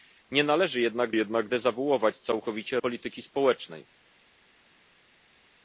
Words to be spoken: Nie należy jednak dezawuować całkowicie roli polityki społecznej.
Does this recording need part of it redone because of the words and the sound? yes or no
yes